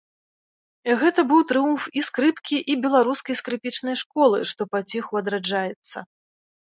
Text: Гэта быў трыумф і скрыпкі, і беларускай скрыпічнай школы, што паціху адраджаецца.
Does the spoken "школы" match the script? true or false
true